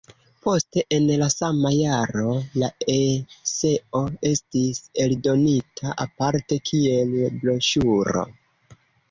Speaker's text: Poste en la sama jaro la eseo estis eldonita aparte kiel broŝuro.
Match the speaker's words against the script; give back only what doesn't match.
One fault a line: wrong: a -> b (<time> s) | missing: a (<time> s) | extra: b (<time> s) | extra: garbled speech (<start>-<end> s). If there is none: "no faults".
no faults